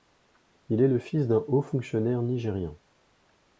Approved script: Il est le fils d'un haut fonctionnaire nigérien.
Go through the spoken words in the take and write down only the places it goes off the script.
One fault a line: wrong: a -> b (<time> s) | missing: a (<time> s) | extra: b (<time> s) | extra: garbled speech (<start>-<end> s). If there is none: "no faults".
no faults